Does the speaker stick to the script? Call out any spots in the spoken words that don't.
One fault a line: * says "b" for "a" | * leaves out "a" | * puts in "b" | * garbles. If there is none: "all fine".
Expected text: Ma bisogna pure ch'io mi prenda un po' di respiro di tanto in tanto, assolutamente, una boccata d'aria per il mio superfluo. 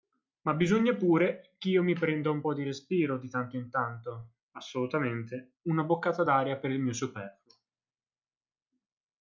all fine